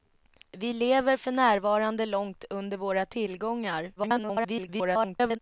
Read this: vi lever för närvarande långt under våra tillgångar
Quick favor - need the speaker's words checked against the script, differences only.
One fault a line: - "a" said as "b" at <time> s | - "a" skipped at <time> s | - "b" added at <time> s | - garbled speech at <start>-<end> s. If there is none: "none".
- garbled speech at 4.0-5.4 s